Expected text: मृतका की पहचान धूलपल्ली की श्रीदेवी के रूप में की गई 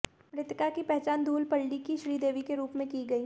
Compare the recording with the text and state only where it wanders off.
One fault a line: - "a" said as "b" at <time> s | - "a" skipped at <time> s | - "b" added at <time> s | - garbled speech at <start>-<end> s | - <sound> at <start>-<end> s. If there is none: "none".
none